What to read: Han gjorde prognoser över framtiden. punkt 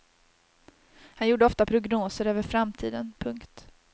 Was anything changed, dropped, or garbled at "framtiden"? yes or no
no